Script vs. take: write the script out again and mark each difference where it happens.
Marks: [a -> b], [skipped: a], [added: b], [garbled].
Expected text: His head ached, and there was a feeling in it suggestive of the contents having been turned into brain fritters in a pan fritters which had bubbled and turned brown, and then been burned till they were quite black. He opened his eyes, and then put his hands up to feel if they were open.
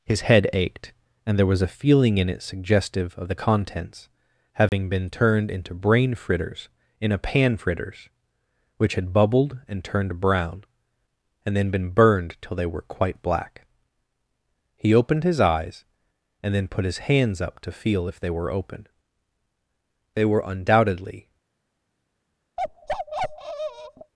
His head ached, and there was a feeling in it suggestive of the contents having been turned into brain fritters in a pan fritters which had bubbled and turned brown, and then been burned till they were quite black. He opened his eyes, and then put his hands up to feel if they were open. [added: They were undoubtedly]